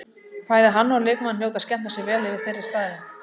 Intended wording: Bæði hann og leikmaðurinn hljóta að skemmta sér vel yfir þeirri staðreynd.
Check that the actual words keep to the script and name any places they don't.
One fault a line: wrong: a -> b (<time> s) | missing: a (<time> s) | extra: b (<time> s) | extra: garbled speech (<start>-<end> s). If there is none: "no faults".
no faults